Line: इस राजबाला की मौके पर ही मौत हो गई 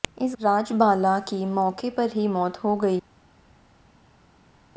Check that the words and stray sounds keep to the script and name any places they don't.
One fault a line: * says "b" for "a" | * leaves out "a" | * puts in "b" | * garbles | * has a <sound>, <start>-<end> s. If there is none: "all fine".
all fine